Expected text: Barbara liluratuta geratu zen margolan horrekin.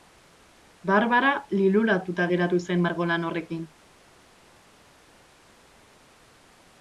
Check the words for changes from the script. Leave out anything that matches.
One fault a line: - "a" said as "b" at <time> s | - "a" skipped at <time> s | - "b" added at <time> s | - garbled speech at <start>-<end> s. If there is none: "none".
none